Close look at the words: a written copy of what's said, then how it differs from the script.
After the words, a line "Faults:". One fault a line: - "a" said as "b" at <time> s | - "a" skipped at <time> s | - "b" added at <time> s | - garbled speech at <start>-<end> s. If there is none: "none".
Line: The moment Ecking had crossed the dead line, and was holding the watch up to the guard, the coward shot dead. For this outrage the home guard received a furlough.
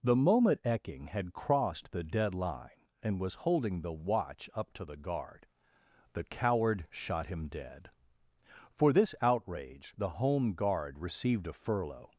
The moment Ecking had crossed the dead line, and was holding the watch up to the guard, the coward shot him dead. For this outrage the home guard received a furlough.
Faults:
- "him" added at 7.3 s